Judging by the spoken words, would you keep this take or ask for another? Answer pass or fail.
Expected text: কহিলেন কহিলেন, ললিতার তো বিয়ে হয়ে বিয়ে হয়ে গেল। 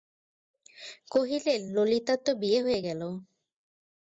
fail